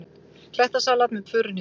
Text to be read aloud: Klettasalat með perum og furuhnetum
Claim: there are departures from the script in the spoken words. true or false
true